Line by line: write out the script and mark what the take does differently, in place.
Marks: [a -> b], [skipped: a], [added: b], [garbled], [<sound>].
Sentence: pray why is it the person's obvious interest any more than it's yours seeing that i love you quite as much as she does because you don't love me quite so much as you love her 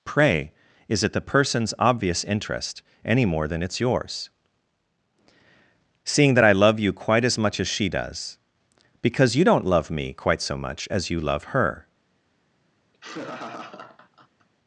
pray [skipped: why] is it the person's obvious interest any more than it's yours seeing that i love you quite as much as she does because you don't love me quite so much as you love her [laugh]